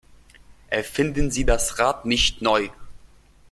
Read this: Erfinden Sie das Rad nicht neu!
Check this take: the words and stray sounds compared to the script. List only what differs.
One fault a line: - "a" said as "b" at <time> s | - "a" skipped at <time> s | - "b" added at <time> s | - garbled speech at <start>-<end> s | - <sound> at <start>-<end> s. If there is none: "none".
none